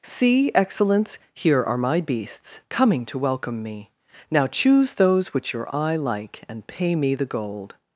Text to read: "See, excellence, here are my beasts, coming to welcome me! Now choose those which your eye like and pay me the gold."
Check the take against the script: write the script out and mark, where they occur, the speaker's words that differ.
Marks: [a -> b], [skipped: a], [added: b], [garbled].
"See, excellence, here are my beasts, coming to welcome me! Now choose those which your eye like and pay me the gold."